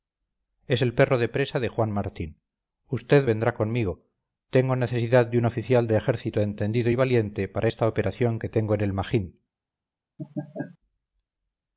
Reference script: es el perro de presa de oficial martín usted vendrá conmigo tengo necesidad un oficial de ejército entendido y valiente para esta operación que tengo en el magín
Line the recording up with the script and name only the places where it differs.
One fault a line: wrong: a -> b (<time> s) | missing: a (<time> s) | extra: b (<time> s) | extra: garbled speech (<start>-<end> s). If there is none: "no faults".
wrong: oficial -> juan (1.7 s)
extra: de (5.3 s)